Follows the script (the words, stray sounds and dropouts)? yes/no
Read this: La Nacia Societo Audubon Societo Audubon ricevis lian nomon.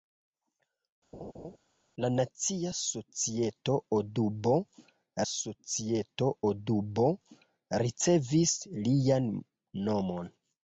no